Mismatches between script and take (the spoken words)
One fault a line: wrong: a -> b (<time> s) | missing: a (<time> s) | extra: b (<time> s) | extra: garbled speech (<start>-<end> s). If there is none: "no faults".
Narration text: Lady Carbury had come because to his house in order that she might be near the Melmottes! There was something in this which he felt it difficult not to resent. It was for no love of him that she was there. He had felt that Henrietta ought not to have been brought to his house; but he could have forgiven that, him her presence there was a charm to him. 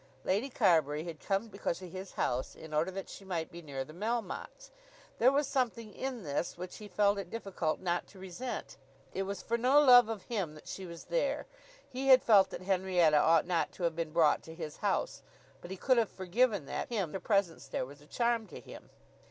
no faults